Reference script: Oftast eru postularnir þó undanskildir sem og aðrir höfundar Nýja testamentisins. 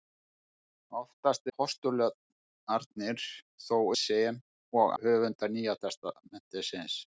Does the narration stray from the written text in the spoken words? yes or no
yes